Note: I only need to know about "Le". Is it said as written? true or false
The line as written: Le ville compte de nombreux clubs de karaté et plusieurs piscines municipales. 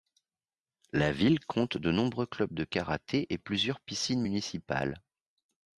false